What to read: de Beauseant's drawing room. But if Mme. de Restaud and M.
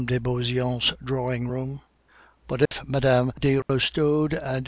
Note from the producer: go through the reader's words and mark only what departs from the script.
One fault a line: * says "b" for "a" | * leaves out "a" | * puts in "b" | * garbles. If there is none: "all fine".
all fine